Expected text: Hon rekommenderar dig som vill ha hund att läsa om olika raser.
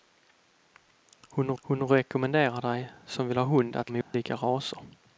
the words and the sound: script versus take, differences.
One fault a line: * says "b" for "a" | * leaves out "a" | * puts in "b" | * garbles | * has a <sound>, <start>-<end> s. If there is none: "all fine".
* puts in "hon"
* leaves out "läsa"
* has a dropout, 4.0-4.1 s